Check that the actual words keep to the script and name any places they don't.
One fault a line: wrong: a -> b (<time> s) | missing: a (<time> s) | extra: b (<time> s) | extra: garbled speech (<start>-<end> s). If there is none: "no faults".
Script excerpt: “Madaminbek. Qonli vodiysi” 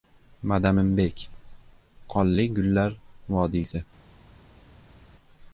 extra: gullar (2.6 s)